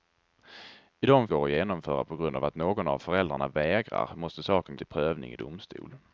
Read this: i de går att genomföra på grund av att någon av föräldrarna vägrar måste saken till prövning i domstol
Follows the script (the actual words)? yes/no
yes